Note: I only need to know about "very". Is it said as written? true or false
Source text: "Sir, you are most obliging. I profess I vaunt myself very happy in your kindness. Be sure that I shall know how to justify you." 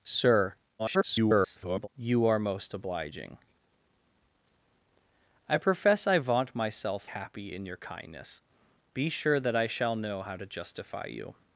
false